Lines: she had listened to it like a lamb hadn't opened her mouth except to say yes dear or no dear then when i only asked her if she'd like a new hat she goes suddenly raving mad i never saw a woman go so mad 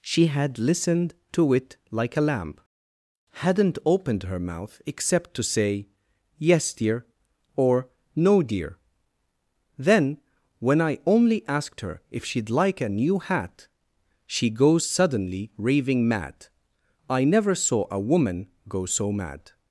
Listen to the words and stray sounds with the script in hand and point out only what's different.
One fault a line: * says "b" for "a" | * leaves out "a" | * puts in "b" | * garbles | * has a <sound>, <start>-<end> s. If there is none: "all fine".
all fine